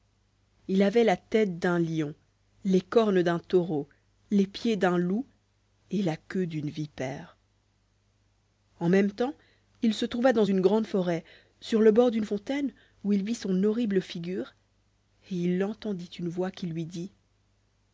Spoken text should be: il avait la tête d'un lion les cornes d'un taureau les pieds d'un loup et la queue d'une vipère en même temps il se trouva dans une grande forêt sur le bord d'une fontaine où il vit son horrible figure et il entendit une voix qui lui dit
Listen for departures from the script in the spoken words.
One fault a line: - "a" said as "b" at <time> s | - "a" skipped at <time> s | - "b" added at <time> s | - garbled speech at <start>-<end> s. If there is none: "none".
none